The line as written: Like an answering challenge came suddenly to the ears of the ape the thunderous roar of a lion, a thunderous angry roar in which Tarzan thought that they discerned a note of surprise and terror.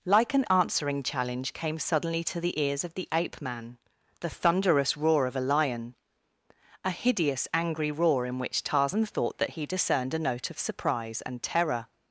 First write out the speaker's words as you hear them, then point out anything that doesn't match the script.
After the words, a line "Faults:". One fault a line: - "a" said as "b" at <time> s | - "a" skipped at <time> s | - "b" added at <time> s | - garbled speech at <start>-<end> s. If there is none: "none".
Like an answering challenge came suddenly to the ears of the ape man the thunderous roar of a lion, a hideous angry roar in which Tarzan thought that he discerned a note of surprise and terror.
Faults:
- "man" added at 3.4 s
- "thunderous" said as "hideous" at 6.9 s
- "they" said as "he" at 9.5 s